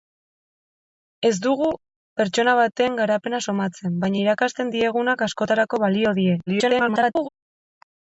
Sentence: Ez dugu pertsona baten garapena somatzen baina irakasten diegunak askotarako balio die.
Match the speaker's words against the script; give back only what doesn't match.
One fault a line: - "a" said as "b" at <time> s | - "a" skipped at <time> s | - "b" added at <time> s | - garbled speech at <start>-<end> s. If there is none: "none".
- garbled speech at 6.5-7.3 s